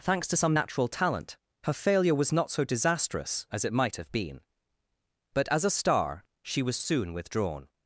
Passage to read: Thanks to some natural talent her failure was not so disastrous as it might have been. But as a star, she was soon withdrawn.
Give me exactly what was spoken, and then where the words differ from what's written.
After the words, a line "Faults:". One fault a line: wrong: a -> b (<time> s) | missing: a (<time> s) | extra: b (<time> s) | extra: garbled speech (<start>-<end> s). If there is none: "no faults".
Thanks to some natural talent her failure was not so disastrous as it might have been. But as a star, she was soon withdrawn.
Faults:
no faults